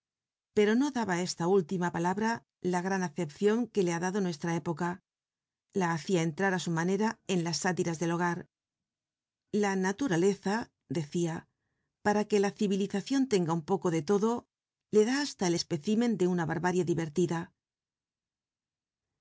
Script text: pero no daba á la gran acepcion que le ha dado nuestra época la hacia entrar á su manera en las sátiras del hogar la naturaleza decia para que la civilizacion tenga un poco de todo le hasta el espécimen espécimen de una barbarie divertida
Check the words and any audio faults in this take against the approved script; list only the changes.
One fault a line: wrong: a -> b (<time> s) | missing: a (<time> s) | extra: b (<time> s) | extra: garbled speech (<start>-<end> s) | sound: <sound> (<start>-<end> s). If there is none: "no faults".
extra: esta última palabra (1.3 s)
extra: da (15.1 s)
missing: espécimen (16.2 s)